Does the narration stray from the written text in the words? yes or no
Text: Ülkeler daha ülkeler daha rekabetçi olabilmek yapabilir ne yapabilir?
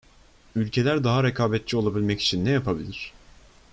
yes